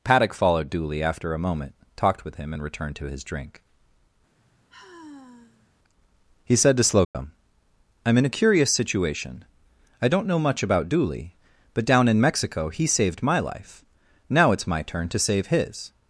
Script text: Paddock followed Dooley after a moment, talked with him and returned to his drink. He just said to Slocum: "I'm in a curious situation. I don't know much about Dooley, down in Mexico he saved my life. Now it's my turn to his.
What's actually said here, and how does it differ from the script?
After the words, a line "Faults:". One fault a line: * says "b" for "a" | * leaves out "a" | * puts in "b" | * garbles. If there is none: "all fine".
Paddock followed Dooley after a moment, talked with him and returned to his drink. He said to Slocum: "I'm in a curious situation. I don't know much about Dooley, but down in Mexico he saved my life. Now it's my turn to save his.
Faults:
* leaves out "just"
* puts in "but"
* puts in "save"